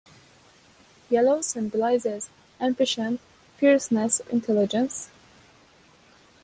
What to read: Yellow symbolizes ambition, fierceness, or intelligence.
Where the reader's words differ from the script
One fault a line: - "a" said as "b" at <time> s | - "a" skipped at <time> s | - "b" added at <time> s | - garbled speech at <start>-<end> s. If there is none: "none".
- "or" skipped at 4.2 s